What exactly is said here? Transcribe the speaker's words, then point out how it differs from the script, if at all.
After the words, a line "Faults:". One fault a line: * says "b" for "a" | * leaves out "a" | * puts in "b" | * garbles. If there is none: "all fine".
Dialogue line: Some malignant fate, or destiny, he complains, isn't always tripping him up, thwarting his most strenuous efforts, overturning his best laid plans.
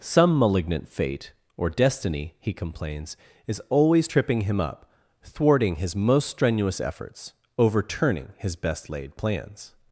Some malignant fate, or destiny, he complains, is always tripping him up, thwarting his most strenuous efforts, overturning his best laid plans.
Faults:
* says "is" for "isn't"